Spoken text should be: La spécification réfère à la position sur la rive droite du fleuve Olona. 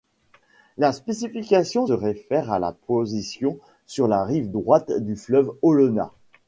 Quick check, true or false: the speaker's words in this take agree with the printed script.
true